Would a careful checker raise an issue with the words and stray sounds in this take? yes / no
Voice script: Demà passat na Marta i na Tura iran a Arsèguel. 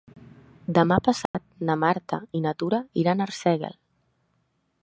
yes